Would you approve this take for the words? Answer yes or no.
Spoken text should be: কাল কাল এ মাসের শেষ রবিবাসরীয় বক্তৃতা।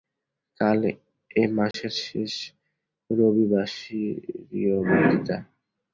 no